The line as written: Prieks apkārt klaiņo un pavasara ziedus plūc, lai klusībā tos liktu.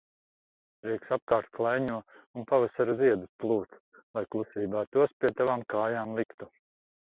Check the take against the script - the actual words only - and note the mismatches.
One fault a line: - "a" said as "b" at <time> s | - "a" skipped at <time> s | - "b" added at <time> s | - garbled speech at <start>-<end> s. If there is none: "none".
- "pie tavām kājām" added at 5.2 s